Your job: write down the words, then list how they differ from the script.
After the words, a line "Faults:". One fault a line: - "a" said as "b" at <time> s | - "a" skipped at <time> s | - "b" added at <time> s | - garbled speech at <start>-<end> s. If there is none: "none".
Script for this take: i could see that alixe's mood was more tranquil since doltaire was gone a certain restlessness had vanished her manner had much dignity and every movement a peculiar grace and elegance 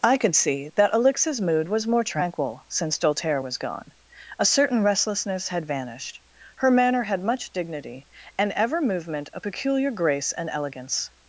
i could see that alixe's mood was more tranquil since doltaire was gone a certain restlessness had vanished her manner had much dignity and ever movement a peculiar grace and elegance
Faults:
- "every" said as "ever" at 8.5 s